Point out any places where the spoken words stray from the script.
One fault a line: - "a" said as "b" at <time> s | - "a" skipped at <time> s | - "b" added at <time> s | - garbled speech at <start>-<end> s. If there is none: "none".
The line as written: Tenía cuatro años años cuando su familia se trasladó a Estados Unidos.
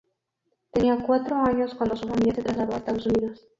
- "años" skipped at 1.8 s